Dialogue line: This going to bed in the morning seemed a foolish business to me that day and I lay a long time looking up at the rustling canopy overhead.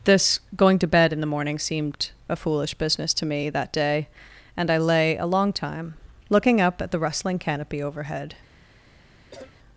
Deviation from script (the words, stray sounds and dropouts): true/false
true